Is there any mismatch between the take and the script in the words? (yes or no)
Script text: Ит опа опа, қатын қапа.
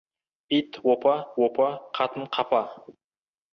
no